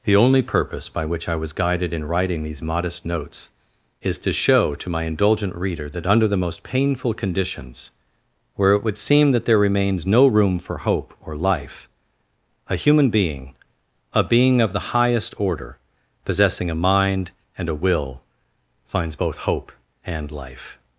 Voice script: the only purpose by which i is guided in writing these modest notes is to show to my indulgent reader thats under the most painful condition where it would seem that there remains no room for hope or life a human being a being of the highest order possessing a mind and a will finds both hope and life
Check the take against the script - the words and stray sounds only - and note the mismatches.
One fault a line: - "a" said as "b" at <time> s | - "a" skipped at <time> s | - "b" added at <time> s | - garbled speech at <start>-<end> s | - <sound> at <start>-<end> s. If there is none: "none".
- "is" said as "was" at 1.4 s
- "thats" said as "that" at 5.9 s
- "condition" said as "conditions" at 7.1 s